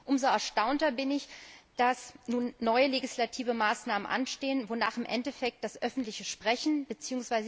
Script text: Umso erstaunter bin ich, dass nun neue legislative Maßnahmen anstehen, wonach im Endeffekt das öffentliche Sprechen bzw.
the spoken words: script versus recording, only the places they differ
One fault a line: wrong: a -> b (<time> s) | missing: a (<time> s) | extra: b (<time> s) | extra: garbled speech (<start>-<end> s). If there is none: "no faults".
no faults